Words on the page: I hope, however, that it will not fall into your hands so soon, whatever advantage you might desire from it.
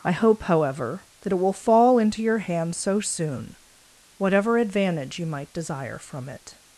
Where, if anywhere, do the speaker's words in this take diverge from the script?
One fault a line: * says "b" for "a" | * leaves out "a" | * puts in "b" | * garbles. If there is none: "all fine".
* leaves out "not"